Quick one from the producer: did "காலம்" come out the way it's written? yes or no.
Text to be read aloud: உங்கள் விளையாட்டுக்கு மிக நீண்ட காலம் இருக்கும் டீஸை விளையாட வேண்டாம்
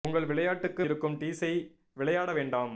no